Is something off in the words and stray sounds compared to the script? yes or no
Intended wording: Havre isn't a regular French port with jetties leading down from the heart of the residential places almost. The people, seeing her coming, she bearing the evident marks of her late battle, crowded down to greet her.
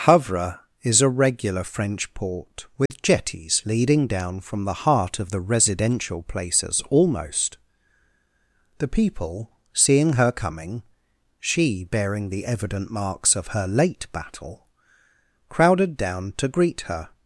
yes